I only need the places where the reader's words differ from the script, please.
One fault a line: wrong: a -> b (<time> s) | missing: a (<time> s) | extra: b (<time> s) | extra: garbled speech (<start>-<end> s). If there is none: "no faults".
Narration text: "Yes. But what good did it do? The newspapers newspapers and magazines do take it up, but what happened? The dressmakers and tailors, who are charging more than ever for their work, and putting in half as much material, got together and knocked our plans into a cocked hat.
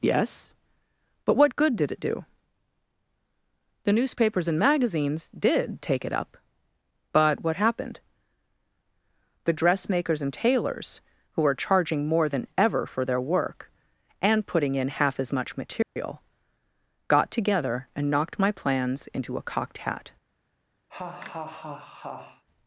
missing: newspapers (4.5 s)
wrong: do -> did (5.4 s)
wrong: our -> my (18.4 s)